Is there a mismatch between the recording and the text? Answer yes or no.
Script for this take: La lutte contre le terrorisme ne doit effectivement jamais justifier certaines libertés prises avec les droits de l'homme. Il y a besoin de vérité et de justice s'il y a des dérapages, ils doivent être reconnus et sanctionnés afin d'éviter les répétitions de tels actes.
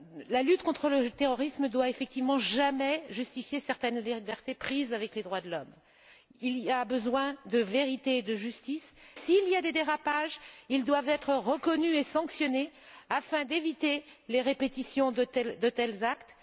no